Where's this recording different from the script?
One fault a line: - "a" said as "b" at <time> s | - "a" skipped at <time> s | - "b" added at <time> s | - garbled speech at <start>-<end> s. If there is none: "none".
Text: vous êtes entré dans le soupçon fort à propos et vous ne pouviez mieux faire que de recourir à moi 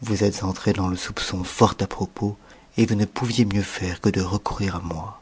none